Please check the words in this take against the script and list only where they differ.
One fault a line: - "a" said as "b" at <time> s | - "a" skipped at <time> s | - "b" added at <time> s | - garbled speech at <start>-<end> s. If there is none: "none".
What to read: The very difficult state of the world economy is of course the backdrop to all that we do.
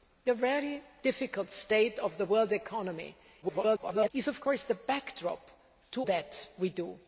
- garbled speech at 3.4-4.1 s
- "all" skipped at 6.0 s